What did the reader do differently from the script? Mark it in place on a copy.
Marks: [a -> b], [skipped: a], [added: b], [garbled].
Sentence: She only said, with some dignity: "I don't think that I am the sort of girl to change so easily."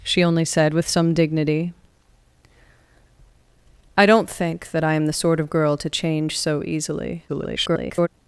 She only said, with some dignity: "I don't think that I am the sort of girl to change so easily." [garbled]